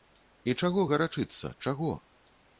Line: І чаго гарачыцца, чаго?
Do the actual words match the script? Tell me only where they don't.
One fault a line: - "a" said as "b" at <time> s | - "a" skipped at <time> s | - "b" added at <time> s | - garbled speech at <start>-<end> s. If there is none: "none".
none